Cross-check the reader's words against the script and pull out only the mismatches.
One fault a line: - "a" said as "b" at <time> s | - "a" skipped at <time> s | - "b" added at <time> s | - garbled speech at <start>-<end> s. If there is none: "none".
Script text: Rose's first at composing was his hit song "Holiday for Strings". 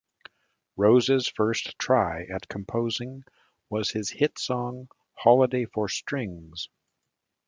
- "try" added at 1.8 s